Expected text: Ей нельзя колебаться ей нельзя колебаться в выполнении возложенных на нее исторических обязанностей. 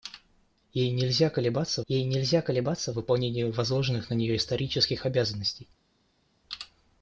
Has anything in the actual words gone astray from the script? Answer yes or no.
no